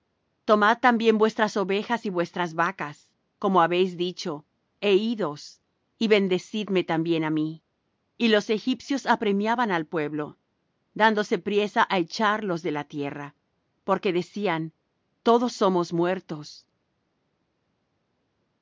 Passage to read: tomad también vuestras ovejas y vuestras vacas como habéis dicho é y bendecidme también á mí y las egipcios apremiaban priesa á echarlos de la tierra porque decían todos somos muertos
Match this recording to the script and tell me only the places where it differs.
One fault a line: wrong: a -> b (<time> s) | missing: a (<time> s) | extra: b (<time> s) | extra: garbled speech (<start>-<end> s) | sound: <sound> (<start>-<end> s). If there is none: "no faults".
extra: idos (5.1 s)
wrong: las -> los (8.3 s)
extra: al pueblo dándose (9.7 s)